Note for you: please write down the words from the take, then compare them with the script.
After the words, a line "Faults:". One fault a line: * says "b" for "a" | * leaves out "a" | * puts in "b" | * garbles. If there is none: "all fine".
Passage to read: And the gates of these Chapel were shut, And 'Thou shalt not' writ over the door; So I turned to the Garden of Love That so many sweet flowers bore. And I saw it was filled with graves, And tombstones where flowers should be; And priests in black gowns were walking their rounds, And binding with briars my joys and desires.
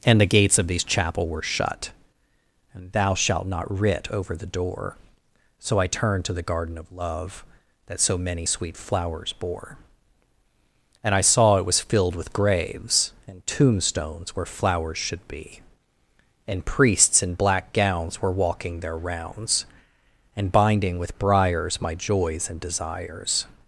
And the gates of these Chapel were shut, And 'Thou shalt not' writ over the door; So I turned to the Garden of Love That so many sweet flowers bore. And I saw it was filled with graves, And tombstones where flowers should be; And priests in black gowns were walking their rounds, And binding with briars my joys and desires.
Faults:
all fine